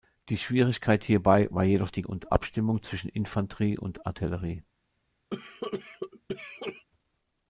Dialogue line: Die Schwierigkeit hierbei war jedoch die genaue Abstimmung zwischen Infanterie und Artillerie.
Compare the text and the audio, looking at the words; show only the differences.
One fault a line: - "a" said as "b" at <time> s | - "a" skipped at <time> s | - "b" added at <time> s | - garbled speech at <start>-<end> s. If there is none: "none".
- "genaue" said as "und" at 2.0 s